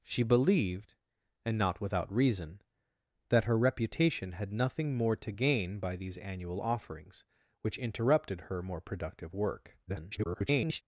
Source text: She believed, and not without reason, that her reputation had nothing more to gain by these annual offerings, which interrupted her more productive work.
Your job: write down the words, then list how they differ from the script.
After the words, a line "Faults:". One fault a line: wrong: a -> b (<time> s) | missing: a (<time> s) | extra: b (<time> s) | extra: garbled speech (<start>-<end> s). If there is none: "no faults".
She believed, and not without reason, that her reputation had nothing more to gain by these annual offerings, which interrupted her more productive work. [garbled]
Faults:
extra: garbled speech (9.9-10.8 s)